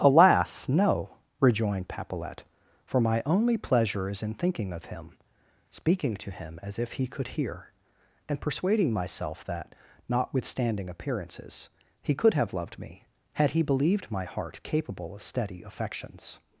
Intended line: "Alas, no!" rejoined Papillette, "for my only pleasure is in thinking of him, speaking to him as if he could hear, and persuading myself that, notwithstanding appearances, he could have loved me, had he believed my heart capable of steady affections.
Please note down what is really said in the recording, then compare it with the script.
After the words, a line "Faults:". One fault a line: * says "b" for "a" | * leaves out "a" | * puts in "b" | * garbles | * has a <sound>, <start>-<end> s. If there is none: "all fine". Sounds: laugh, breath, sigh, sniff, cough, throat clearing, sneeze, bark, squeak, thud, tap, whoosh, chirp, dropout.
"Alas, no!" rejoined Papillette, "for my only pleasure is in thinking of him, speaking to him as if he could hear, and persuading myself that, notwithstanding appearances, he could have loved me, had he believed my heart capable of steady affections.
Faults:
all fine